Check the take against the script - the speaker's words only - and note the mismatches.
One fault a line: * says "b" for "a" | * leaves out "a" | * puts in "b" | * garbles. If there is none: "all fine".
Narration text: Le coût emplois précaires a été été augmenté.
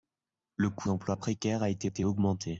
all fine